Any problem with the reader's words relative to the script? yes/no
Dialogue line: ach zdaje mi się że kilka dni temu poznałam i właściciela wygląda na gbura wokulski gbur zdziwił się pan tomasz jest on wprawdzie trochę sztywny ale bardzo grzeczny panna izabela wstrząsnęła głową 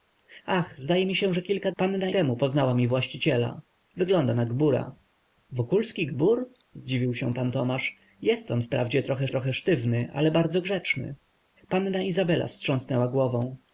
yes